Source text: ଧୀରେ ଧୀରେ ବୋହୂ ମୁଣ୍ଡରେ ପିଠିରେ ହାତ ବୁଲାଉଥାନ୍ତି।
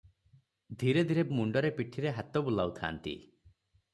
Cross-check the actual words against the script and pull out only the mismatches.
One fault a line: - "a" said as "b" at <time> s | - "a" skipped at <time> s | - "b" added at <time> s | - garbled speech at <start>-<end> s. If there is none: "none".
- "ବୋହୂ" skipped at 1.2 s